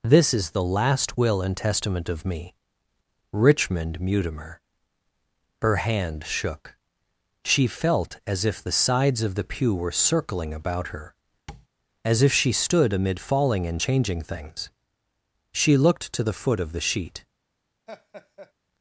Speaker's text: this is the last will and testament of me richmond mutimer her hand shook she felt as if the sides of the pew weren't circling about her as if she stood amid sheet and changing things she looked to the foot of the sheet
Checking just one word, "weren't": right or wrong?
wrong